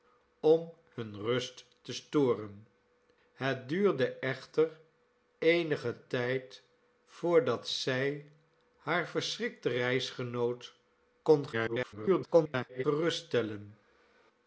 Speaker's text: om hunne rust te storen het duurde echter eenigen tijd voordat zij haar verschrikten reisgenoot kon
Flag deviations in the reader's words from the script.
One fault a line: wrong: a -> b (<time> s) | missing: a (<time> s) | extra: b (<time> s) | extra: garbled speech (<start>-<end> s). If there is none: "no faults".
extra: garbled speech (11.5-12.8 s)